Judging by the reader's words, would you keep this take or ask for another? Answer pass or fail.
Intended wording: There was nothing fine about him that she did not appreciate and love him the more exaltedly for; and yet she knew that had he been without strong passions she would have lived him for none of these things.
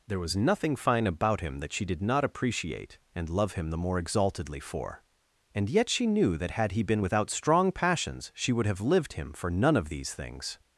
pass